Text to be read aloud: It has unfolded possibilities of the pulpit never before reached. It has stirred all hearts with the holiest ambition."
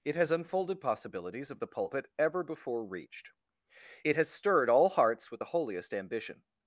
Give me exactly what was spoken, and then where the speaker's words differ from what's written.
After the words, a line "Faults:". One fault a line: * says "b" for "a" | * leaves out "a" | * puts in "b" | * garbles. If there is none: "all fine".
It has unfolded possibilities of the pulpit ever before reached. It has stirred all hearts with the holiest ambition."
Faults:
* says "ever" for "never"